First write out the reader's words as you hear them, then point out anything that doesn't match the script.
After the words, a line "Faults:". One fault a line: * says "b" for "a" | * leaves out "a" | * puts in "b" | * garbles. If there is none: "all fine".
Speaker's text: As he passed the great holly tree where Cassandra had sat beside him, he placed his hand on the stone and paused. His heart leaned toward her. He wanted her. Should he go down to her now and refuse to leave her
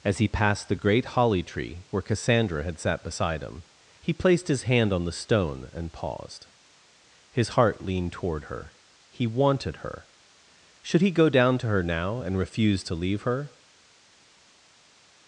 As he passed the great holly tree where Cassandra had sat beside him, he placed his hand on the stone and paused. His heart leaned toward her. He wanted her. Should he go down to her now and refuse to leave her
Faults:
all fine